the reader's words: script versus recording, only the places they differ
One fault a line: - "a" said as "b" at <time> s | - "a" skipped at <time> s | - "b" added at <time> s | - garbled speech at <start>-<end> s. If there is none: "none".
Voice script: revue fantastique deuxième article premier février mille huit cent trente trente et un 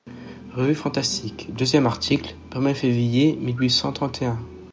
- "trente" skipped at 4.2 s